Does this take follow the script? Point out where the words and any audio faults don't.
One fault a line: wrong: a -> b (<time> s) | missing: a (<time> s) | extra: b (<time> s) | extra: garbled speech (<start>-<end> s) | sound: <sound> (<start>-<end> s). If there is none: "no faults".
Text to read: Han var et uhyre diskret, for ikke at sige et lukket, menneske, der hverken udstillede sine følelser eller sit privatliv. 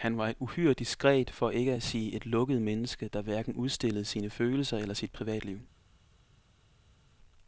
no faults